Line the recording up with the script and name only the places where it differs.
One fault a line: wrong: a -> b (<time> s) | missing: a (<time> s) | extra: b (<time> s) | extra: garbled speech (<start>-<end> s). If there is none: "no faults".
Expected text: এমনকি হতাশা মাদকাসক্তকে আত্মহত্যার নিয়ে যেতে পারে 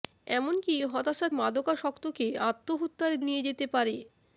no faults